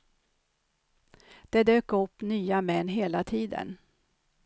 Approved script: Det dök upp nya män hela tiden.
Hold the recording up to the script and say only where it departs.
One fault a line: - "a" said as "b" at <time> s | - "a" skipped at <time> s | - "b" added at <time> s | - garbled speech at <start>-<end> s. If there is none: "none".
none